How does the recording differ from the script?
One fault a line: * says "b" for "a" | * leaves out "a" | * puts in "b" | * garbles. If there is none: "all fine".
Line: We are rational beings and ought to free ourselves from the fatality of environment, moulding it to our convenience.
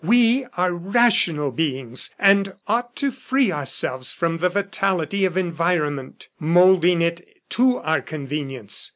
all fine